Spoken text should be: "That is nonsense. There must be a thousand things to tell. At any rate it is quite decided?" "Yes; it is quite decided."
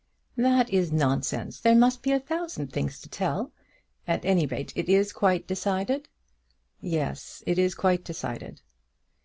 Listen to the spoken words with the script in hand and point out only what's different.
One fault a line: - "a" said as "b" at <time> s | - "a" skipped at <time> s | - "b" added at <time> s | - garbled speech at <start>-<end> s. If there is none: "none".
none